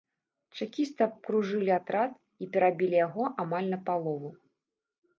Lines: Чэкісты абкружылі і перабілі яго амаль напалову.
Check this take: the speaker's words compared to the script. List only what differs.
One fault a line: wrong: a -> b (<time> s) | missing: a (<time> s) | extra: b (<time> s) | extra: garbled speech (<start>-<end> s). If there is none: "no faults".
extra: атрад (1.8 s)